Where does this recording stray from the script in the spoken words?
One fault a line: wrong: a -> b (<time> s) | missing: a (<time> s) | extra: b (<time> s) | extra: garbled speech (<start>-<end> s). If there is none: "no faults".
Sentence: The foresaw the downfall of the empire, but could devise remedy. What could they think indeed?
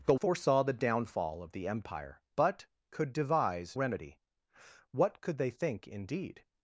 no faults